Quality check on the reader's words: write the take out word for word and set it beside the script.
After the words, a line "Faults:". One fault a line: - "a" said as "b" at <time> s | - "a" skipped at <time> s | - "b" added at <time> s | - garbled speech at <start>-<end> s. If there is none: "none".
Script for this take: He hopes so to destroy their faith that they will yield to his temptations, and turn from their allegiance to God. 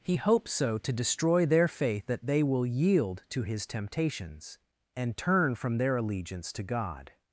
He hopes so to destroy their faith that they will yield to his temptations, and turn from their allegiance to God.
Faults:
none